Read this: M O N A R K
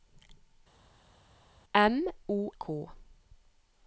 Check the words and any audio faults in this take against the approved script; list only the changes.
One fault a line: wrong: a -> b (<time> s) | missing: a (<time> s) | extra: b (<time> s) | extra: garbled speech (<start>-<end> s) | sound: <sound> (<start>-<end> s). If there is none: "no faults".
missing: N A R (2.5 s)